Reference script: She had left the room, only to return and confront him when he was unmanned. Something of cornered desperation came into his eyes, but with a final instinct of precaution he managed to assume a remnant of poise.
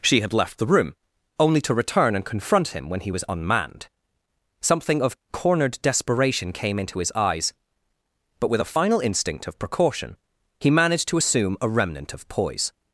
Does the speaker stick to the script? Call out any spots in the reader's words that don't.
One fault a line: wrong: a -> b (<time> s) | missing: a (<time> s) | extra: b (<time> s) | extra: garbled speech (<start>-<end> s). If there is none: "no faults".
no faults